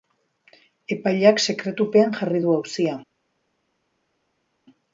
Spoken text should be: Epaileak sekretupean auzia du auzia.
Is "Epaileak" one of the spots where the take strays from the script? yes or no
no